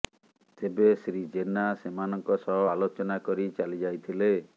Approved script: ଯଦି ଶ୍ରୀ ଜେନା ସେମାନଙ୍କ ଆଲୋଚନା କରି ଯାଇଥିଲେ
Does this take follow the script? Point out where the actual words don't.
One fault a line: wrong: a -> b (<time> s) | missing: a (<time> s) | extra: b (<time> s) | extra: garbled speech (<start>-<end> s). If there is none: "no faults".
wrong: ଯଦି -> ତେବେ (0.6 s)
extra: ସହ (2.4 s)
extra: ଚାଲି (3.6 s)